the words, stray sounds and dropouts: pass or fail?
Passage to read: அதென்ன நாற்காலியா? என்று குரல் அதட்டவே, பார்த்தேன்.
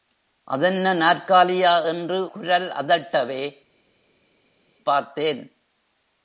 pass